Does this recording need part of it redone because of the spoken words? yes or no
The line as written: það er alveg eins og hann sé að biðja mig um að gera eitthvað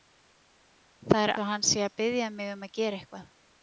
yes